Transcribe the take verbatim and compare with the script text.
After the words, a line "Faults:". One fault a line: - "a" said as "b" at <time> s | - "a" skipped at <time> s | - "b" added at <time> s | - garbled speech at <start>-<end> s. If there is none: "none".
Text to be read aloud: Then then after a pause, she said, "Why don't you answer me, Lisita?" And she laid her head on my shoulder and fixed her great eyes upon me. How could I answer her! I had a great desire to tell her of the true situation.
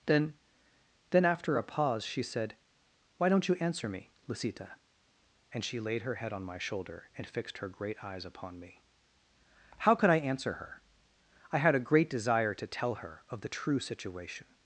Then then after a pause, she said, "Why don't you answer me, Lisita?" And she laid her head on my shoulder and fixed her great eyes upon me. How could I answer her! I had a great desire to tell her of the true situation.
Faults:
none